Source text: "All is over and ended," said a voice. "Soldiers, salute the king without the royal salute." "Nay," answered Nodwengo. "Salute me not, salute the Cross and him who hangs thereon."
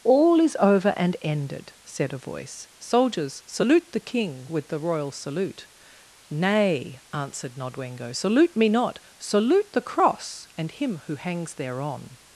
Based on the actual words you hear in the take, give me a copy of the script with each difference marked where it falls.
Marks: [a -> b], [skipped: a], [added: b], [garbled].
"All is over and ended," said a voice. "Soldiers, salute the king [without -> with] the royal salute." "Nay," answered Nodwengo. "Salute me not, salute the Cross and him who hangs thereon."